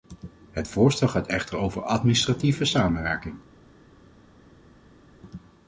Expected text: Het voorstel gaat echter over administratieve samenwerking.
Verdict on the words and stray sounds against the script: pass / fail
pass